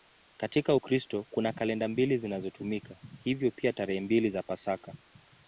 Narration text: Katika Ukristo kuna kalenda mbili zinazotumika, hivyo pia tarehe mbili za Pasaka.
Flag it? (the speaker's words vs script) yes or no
no